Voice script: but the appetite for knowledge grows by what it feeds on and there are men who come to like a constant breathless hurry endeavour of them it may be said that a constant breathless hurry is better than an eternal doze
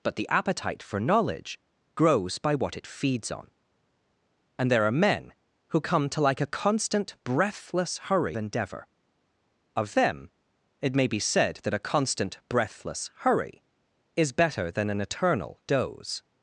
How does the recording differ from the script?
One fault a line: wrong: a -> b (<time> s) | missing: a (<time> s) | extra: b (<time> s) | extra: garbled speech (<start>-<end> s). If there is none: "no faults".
no faults